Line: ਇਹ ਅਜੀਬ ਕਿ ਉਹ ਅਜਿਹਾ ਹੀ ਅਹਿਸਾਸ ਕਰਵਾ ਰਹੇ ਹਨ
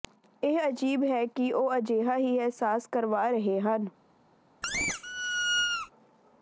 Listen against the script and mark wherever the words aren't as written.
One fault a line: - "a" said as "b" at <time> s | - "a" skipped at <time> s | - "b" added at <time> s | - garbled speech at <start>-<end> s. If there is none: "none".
- "ਹੈ" added at 1.1 s